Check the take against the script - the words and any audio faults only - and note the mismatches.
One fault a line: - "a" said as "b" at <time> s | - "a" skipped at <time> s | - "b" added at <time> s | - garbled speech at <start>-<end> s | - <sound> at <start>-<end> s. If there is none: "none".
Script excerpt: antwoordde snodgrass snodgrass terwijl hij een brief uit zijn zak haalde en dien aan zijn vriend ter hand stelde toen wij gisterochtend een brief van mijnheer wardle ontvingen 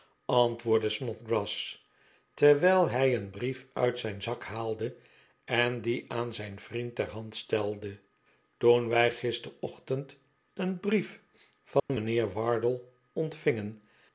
- "snodgrass" skipped at 1.9 s
- dropout at 11.8-11.9 s